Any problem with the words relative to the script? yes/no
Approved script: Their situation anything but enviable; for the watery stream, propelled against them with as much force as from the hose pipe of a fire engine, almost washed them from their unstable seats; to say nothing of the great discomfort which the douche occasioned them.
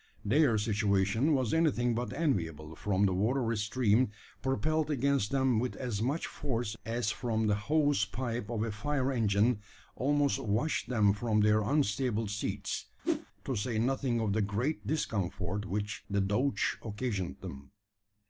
yes